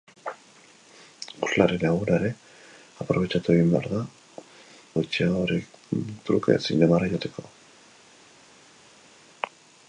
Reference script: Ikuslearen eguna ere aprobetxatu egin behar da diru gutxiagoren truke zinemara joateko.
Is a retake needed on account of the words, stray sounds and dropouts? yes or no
yes